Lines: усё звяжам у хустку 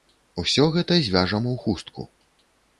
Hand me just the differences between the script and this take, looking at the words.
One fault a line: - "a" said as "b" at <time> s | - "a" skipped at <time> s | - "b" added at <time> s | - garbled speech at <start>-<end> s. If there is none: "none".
- "гэта" added at 0.8 s